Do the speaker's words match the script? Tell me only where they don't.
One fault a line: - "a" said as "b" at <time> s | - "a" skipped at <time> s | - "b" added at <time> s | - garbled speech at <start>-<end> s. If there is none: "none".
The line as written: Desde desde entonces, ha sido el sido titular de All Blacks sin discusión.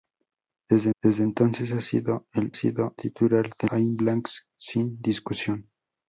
none